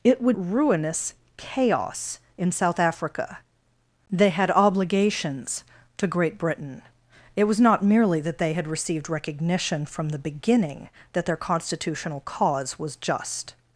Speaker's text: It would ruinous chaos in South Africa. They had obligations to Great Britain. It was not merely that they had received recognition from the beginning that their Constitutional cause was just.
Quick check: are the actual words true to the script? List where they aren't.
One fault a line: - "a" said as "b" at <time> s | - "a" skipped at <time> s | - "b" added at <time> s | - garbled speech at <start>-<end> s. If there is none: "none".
none